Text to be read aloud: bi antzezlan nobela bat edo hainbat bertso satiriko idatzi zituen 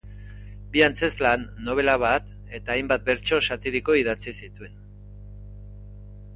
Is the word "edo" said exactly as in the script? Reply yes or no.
no